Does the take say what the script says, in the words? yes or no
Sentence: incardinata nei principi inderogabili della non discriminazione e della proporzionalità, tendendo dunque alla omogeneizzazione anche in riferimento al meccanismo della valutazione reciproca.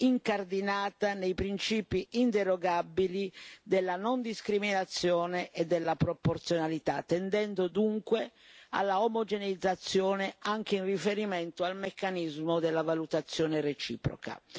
yes